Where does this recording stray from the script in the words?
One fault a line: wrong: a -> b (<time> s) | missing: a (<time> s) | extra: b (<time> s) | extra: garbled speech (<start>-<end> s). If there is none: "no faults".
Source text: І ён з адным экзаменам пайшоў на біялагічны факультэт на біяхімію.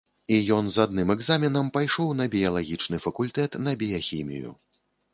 no faults